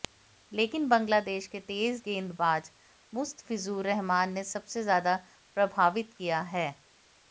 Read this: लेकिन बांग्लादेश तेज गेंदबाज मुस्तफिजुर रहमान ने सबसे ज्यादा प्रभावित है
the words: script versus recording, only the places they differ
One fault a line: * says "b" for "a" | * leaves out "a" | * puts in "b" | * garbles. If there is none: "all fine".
* puts in "के"
* puts in "किया"